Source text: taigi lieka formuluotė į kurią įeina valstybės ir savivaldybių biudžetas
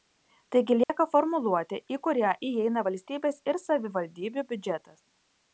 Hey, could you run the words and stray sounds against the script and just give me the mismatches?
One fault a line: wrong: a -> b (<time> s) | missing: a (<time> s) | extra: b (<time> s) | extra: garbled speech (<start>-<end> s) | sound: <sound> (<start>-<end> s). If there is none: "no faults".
sound: dropout (0.8-0.9 s)